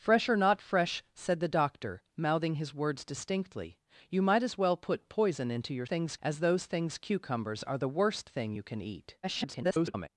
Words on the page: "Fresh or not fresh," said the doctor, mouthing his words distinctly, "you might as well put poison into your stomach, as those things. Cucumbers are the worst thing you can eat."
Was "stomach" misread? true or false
true